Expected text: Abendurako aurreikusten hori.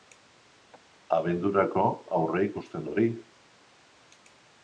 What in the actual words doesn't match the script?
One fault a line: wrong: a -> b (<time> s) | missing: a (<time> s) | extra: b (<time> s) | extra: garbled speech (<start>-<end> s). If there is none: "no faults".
no faults